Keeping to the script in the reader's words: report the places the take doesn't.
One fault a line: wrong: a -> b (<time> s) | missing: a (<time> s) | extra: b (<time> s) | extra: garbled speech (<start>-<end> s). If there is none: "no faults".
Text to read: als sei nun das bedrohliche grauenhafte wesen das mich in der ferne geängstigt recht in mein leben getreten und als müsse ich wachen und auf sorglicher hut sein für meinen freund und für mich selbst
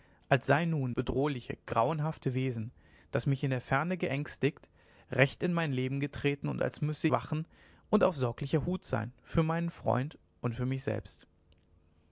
missing: das (0.9 s)
missing: ich (7.1 s)